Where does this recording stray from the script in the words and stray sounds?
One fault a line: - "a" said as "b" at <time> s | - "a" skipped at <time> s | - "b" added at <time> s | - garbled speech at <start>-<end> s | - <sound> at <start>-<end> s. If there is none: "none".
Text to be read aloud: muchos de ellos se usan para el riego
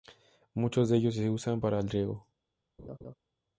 - laugh at 2.8-3.1 s